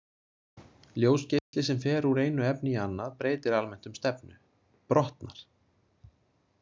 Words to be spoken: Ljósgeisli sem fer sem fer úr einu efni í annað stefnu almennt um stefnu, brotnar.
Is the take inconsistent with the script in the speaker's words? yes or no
yes